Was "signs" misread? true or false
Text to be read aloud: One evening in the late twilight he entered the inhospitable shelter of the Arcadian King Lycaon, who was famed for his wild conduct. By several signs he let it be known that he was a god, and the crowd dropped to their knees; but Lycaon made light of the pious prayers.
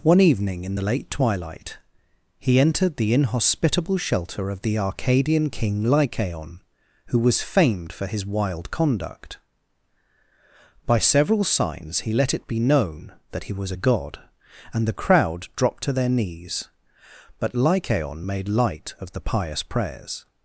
false